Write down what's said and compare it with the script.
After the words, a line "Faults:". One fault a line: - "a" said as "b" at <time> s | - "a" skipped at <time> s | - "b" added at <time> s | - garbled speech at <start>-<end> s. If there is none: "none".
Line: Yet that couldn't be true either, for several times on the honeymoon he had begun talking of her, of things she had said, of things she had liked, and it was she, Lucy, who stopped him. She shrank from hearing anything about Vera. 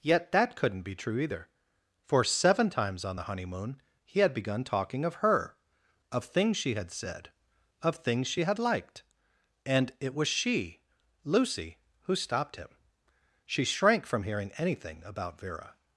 Yet that couldn't be true either, for seven times on the honeymoon he had begun talking of her, of things she had said, of things she had liked, and it was she, Lucy, who stopped him. She shrank from hearing anything about Vera.
Faults:
- "several" said as "seven" at 2.2 s